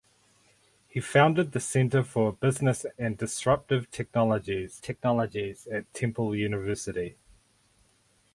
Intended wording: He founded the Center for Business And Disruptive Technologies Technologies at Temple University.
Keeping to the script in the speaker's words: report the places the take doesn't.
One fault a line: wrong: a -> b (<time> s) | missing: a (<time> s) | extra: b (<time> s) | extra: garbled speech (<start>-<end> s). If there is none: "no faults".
no faults